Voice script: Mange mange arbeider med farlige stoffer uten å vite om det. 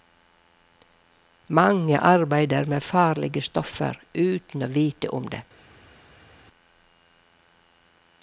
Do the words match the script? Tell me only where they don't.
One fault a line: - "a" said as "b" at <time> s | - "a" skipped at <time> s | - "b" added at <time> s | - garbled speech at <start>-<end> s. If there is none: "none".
- "mange" skipped at 2.0 s